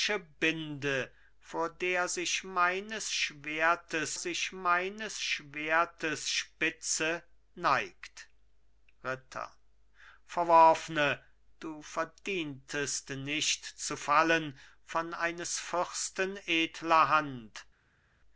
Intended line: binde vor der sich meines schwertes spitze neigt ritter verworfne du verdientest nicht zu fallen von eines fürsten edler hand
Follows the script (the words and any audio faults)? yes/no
no